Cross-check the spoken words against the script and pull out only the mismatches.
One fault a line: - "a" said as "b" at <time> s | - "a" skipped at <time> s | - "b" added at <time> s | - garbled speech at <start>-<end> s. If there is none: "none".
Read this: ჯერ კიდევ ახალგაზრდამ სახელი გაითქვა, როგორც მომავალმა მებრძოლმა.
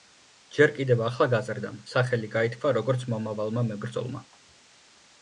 none